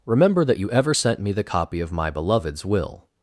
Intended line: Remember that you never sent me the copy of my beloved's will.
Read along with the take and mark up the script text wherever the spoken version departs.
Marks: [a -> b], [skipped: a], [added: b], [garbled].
Remember that you [never -> ever] sent me the copy of my beloved's will.